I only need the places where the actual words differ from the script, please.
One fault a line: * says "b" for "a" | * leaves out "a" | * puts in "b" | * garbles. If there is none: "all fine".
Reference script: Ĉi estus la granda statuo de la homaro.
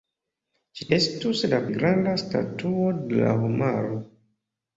all fine